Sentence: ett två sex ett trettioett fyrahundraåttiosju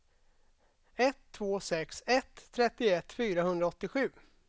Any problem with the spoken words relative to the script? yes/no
no